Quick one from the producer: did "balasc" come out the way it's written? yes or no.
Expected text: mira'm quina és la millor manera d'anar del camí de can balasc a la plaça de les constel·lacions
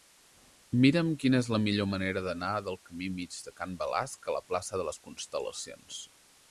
yes